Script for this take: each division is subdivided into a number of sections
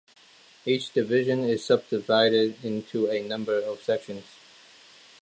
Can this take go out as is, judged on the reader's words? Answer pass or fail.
pass